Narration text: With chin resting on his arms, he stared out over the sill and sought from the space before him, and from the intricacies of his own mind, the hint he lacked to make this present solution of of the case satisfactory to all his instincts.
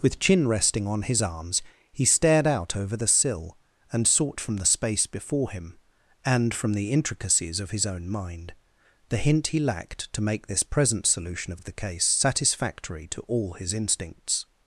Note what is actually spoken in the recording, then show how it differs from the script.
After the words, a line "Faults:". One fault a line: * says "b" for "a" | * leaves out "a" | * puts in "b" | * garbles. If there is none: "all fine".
With chin resting on his arms, he stared out over the sill and sought from the space before him, and from the intricacies of his own mind, the hint he lacked to make this present solution of of the case satisfactory to all his instincts.
Faults:
all fine